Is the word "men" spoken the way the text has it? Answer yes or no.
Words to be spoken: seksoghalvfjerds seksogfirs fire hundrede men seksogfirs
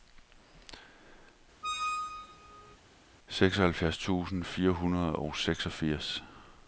no